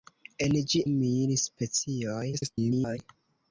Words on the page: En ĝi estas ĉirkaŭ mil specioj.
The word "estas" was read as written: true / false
false